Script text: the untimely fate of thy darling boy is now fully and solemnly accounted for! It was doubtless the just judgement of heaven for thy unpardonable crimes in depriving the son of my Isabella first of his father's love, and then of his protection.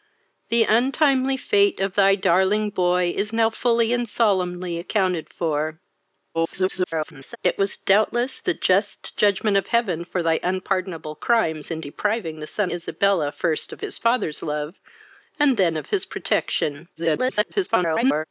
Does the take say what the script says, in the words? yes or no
no